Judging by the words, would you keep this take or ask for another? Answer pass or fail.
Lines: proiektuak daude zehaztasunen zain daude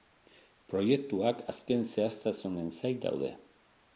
fail